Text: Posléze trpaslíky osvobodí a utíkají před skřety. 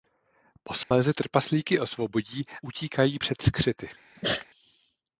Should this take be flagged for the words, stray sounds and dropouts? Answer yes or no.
yes